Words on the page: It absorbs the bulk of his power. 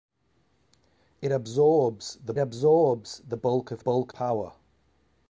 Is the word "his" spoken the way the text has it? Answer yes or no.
no